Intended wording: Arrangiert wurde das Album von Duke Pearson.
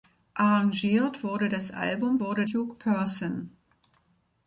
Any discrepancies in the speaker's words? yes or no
yes